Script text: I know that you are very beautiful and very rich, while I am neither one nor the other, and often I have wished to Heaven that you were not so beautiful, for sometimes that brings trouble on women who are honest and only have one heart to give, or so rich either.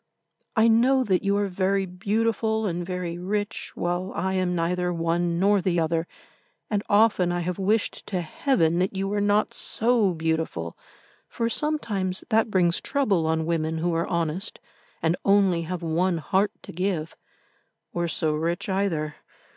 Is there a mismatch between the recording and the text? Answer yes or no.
no